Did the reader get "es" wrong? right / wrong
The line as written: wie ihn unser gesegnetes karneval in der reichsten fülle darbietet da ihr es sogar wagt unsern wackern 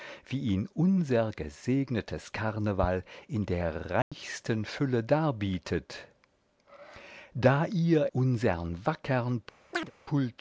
wrong